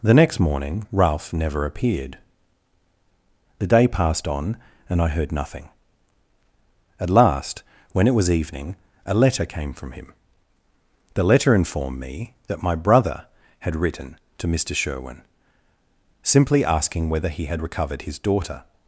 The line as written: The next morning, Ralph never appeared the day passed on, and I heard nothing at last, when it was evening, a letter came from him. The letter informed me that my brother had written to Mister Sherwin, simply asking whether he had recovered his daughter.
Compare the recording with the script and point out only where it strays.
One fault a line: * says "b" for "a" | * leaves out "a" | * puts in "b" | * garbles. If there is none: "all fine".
all fine